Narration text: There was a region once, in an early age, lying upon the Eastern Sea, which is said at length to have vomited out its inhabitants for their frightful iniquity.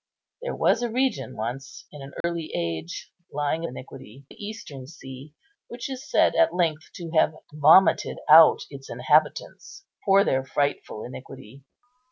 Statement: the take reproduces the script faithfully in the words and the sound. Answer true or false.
false